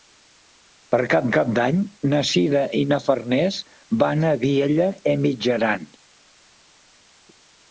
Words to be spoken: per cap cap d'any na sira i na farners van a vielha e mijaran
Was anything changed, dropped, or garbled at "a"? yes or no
no